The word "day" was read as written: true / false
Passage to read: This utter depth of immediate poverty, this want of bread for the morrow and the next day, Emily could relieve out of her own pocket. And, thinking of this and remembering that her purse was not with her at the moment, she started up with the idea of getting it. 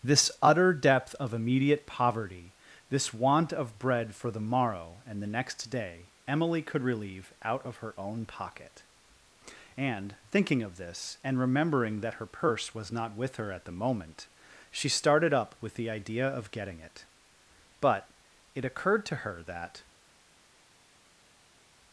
true